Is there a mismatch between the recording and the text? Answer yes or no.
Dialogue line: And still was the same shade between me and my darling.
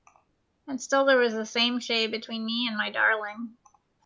yes